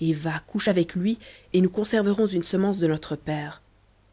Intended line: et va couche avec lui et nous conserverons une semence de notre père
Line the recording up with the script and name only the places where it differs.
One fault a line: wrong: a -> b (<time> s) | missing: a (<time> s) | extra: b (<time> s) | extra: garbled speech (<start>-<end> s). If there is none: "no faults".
no faults